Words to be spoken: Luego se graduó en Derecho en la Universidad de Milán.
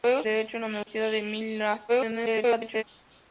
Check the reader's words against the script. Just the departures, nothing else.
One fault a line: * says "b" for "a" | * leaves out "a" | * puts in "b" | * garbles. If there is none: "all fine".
* leaves out "se graduó en"
* garbles